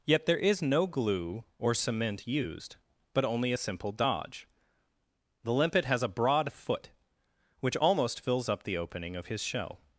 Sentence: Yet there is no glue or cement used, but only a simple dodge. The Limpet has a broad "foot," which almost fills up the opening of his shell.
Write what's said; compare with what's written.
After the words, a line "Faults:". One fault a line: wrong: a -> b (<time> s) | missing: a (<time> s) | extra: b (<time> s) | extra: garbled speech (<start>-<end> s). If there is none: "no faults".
Yet there is no glue or cement used, but only a simple dodge. The Limpet has a broad "foot," which almost fills up the opening of his shell.
Faults:
no faults